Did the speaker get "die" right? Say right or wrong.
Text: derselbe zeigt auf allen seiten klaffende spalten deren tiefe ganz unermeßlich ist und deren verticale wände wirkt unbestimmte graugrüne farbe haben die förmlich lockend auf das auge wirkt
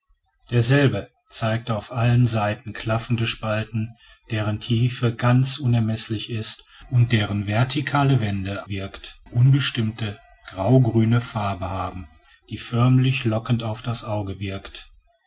right